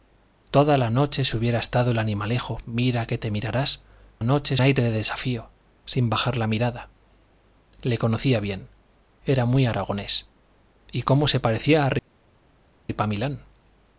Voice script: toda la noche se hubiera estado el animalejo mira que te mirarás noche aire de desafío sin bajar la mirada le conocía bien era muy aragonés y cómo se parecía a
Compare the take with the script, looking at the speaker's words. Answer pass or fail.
pass